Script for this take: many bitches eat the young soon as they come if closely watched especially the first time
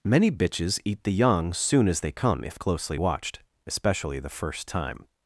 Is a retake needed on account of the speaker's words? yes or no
no